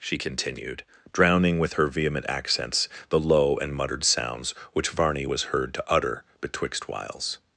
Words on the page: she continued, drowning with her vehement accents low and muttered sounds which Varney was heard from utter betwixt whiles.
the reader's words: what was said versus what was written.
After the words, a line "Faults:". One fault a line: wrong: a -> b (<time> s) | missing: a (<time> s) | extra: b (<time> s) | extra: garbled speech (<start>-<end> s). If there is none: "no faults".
she continued, drowning with her vehement accents the low and muttered sounds which Varney was heard to utter betwixt whiles.
Faults:
extra: the (3.1 s)
wrong: from -> to (5.7 s)